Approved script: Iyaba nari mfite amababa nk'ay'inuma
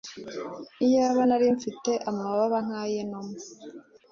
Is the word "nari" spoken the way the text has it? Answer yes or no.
yes